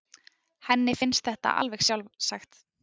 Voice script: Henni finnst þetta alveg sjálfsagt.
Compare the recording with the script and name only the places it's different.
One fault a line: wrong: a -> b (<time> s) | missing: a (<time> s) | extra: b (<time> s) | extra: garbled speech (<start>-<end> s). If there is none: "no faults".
no faults